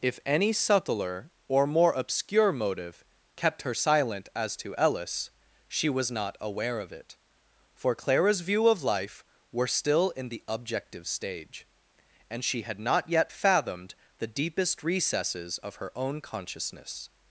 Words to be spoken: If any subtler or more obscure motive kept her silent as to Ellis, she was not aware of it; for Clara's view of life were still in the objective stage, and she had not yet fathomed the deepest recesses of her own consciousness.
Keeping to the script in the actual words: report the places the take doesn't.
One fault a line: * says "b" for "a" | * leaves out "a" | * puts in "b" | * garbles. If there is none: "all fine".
all fine